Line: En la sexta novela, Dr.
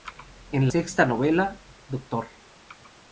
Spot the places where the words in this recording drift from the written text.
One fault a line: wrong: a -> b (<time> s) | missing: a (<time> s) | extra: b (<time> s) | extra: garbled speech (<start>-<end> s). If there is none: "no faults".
missing: la (0.7 s)